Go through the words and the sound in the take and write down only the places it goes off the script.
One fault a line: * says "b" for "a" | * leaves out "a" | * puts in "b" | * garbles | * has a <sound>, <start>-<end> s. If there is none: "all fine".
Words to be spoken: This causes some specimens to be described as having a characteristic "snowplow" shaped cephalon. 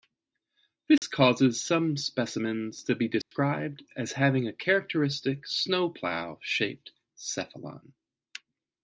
* has a dropout, 1.0-1.0 s
* has a dropout, 3.2-3.3 s